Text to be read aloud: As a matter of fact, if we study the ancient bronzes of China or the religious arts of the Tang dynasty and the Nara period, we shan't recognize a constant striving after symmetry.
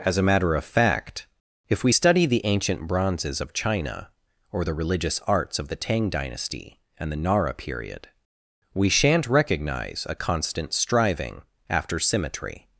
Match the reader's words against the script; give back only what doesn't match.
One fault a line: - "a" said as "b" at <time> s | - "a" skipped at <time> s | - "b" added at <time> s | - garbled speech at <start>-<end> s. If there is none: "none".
none